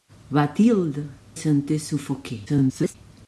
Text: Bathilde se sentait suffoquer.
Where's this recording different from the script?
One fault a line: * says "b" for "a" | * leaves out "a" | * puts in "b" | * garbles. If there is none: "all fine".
* leaves out "se"
* garbles